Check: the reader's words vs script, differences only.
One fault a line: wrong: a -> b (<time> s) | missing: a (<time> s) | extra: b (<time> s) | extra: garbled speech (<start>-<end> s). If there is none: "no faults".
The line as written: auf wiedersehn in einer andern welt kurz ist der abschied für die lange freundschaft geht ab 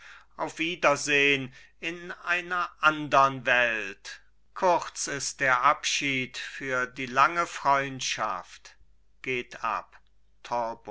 no faults